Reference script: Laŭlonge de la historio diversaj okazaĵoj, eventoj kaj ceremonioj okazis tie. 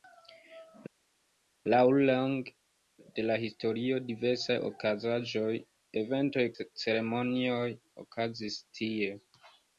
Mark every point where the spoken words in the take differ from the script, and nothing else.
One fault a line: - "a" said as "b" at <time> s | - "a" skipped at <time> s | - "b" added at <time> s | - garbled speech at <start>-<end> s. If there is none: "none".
- "kaj" skipped at 6.5 s